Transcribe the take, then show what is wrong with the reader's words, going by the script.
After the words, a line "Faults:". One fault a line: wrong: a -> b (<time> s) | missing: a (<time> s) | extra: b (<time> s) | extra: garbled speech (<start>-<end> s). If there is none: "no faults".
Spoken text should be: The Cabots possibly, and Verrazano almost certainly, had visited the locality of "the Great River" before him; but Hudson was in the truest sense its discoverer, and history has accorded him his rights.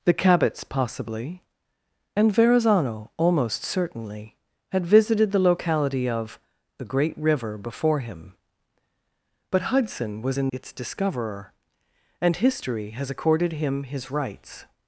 The Cabots possibly, and Verrazano almost certainly, had visited the locality of "the Great River" before him; but Hudson was in its discoverer, and history has accorded him his rights.
Faults:
missing: the truest sense (10.5 s)